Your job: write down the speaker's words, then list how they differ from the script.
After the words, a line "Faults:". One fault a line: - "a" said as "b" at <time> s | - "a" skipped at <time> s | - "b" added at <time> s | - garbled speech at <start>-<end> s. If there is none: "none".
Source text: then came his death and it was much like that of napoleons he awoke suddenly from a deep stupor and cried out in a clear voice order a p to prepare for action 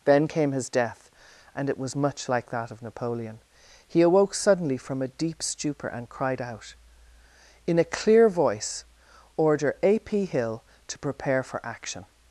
then came his death and it was much like that of napoleon he awoke suddenly from a deep stupor and cried out in a clear voice order a p hill to prepare for action
Faults:
- "napoleons" said as "napoleon" at 2.8 s
- "hill" added at 10.2 s